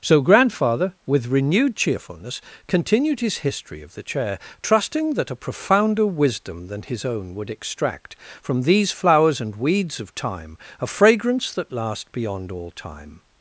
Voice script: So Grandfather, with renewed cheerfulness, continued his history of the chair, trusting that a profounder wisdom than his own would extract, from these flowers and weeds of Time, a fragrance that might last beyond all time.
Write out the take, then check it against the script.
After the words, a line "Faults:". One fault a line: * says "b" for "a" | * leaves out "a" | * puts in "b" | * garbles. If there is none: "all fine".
So Grandfather, with renewed cheerfulness, continued his history of the chair, trusting that a profounder wisdom than his own would extract, from these flowers and weeds of Time, a fragrance that last beyond all time.
Faults:
* leaves out "might"